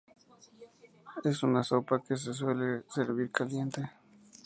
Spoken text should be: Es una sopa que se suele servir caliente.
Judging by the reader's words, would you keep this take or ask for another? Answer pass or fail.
pass